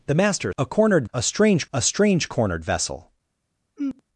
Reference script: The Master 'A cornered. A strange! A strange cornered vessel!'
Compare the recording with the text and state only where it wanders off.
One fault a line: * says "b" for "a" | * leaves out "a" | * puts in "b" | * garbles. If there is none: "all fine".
all fine